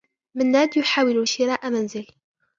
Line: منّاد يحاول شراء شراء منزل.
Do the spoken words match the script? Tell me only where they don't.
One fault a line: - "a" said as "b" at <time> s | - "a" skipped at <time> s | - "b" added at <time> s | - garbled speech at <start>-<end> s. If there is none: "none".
- "شراء" skipped at 1.7 s